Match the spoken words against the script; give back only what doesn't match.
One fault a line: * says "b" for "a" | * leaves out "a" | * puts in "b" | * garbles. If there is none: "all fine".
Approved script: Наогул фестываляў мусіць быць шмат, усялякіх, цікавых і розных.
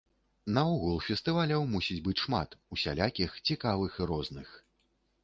all fine